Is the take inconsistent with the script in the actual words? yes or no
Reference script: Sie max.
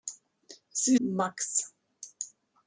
no